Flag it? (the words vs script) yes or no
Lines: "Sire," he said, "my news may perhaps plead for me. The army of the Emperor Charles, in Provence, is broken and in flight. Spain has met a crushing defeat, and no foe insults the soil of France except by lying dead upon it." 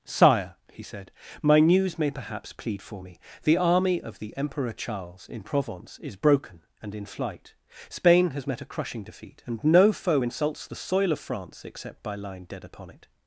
no